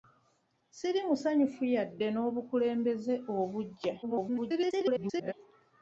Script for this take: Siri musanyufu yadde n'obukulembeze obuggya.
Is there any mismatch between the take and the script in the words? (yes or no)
yes